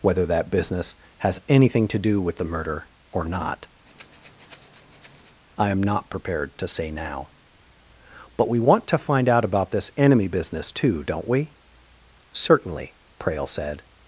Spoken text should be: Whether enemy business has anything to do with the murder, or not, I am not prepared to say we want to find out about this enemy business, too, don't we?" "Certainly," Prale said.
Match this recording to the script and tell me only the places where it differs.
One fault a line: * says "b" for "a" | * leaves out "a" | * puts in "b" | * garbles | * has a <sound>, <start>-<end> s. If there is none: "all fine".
* says "that" for "enemy"
* has a breath, 3.8-5.4 s
* puts in "now But"